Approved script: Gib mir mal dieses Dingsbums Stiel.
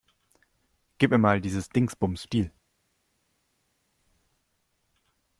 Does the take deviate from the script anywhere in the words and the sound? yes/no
no